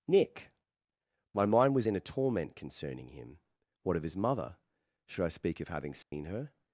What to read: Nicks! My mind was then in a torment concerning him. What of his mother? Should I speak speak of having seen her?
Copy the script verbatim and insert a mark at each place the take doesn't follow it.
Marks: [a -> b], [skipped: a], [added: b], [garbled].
[Nicks! -> Nick] My mind was [skipped: then] in a torment concerning him. What of his mother? Should I speak [skipped: speak] of having seen her?